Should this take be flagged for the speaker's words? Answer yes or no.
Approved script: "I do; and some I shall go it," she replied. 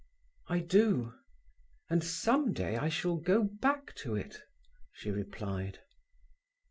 yes